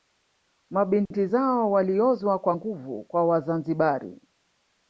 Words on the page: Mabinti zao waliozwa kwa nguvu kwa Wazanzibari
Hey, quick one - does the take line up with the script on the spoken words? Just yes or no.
yes